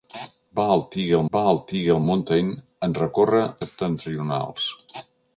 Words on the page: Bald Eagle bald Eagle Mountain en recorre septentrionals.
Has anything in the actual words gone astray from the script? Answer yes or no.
no